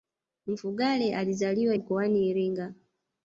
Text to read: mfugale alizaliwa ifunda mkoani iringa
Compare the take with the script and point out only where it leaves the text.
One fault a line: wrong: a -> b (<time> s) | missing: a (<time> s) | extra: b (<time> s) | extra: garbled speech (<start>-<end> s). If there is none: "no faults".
missing: ifunda (1.8 s)